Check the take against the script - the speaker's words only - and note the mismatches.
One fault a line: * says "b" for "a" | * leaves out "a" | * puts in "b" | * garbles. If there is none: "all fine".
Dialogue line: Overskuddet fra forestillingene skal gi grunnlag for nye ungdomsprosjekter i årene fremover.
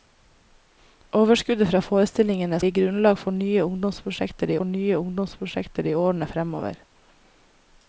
* leaves out "skal"
* puts in "for nye ungdomsprosjekter"